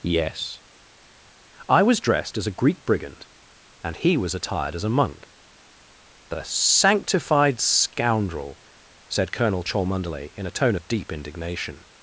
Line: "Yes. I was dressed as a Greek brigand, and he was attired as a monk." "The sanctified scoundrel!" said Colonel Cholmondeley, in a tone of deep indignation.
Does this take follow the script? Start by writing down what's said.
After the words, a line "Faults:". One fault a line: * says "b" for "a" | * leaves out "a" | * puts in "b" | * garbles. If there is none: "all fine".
"Yes. I was dressed as a Greek brigand, and he was attired as a monk." "The sanctified scoundrel!" said Colonel Cholmondeley, in a tone of deep indignation.
Faults:
all fine